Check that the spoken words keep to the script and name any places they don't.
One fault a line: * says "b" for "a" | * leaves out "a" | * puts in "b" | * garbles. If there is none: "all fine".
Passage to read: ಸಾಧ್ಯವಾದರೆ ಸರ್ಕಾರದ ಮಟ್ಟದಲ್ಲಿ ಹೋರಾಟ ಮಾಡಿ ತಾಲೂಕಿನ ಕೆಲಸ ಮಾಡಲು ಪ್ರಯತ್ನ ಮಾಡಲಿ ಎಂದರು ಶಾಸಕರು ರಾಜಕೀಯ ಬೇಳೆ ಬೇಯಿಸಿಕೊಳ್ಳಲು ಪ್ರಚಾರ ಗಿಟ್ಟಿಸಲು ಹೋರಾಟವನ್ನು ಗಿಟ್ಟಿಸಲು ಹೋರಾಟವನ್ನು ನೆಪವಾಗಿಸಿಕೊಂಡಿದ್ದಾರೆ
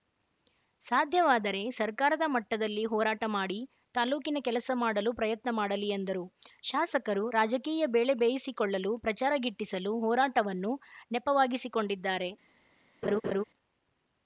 * leaves out "ಗಿಟ್ಟಿಸಲು ಹೋರಾಟವನ್ನು"